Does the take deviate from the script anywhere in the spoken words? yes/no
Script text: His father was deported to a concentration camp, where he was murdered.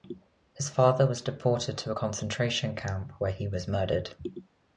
no